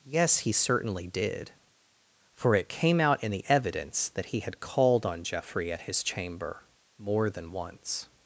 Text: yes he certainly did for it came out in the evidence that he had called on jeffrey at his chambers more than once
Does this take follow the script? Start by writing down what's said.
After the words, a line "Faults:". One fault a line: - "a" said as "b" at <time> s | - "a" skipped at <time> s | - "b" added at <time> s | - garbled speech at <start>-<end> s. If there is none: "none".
yes he certainly did for it came out in the evidence that he had called on jeffrey at his chamber more than once
Faults:
- "chambers" said as "chamber" at 6.0 s